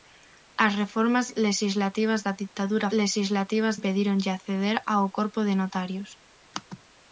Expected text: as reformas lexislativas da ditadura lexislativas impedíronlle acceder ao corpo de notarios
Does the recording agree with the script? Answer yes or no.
yes